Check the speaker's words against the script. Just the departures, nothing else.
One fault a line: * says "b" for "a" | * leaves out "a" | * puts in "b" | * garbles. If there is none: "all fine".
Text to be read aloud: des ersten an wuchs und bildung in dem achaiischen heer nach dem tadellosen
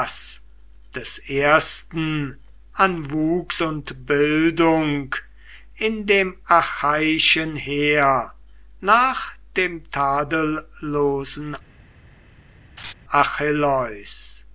all fine